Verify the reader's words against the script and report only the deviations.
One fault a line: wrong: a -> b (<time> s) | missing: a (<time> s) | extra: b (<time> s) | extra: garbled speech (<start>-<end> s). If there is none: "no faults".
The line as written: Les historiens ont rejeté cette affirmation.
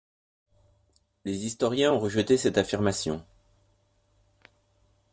no faults